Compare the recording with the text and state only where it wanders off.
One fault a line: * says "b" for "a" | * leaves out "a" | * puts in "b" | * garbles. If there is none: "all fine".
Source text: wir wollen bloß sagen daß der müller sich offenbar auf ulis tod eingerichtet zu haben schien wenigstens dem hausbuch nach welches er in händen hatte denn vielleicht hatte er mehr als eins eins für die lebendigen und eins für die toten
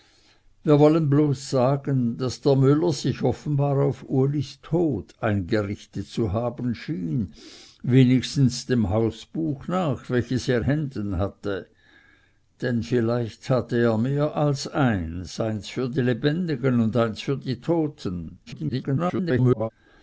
* leaves out "in"
* garbles